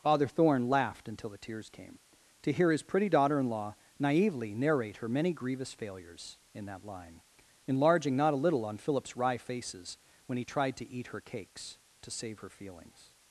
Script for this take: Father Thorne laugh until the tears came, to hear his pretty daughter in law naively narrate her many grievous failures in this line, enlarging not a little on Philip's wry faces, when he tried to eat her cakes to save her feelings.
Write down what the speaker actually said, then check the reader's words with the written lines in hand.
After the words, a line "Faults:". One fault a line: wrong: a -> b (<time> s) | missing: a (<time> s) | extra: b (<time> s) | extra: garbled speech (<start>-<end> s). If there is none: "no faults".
Father Thorne laughed until the tears came, to hear his pretty daughter in law naively narrate her many grievous failures in that line, enlarging not a little on Philip's wry faces, when he tried to eat her cakes to save her feelings.
Faults:
wrong: laugh -> laughed (0.7 s)
wrong: this -> that (6.7 s)